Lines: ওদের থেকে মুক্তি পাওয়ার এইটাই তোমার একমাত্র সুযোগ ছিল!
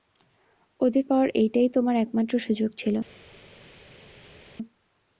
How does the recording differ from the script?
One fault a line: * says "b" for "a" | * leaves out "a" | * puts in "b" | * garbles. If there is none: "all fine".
* leaves out "থেকে মুক্তি"